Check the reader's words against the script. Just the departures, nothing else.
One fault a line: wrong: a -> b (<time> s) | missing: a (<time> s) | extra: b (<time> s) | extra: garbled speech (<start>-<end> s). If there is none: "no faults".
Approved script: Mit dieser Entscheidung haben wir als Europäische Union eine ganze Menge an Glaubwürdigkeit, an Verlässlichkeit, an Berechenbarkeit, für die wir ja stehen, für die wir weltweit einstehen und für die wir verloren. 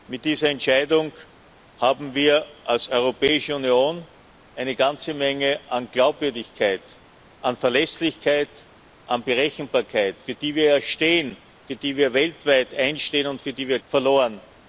no faults